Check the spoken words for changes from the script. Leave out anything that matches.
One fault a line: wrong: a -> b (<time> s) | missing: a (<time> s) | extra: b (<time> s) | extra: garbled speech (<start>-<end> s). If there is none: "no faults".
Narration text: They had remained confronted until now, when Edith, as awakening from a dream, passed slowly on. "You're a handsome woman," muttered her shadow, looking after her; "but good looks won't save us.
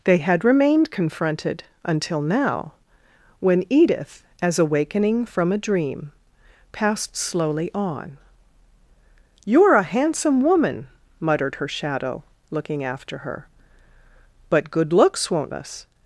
missing: save (15.5 s)